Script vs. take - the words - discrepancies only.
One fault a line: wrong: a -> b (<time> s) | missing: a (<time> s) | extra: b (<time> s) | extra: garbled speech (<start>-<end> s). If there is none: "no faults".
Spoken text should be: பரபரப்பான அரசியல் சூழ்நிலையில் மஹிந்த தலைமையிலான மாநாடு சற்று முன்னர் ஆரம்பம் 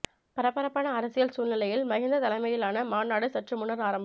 no faults